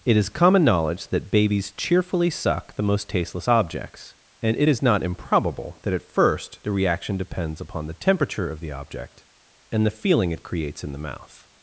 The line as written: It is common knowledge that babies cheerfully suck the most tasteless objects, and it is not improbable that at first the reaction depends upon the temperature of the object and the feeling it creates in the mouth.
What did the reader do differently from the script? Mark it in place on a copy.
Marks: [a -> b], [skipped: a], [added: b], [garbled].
It is common knowledge that babies cheerfully suck the most tasteless objects, and it is not improbable that at first the reaction depends upon the temperature of the object and the feeling it creates in the mouth.